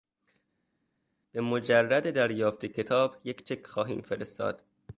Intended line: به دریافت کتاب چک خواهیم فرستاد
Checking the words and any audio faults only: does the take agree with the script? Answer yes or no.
no